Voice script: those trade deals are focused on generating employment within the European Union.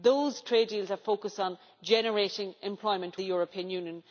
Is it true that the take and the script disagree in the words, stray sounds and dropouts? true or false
true